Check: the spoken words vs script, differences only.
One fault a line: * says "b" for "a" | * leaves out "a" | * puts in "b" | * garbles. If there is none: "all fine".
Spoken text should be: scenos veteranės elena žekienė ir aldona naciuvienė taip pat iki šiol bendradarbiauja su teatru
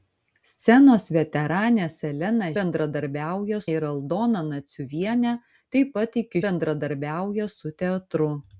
* says "bendradarbiauja" for "žekienė"
* leaves out "šiol"